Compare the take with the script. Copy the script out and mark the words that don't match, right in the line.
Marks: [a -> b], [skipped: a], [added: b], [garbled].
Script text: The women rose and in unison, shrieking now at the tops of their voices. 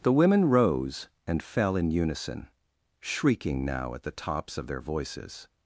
The women rose and [added: fell] in unison, shrieking now at the tops of their voices.